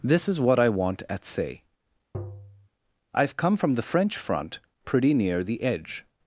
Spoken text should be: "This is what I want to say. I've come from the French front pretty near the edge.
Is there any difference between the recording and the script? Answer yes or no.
yes